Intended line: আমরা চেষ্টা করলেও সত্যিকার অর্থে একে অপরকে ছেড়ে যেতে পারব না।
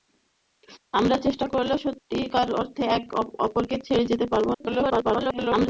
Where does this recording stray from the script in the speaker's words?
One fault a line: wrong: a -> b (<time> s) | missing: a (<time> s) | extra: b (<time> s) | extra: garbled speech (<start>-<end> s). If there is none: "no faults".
extra: garbled speech (4.5-5.7 s)